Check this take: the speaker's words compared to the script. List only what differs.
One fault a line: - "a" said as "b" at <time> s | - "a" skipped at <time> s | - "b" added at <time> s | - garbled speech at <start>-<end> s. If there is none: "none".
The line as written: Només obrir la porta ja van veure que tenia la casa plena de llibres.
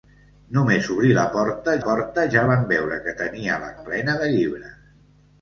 - "porta" added at 1.8 s
- "casa" skipped at 3.7 s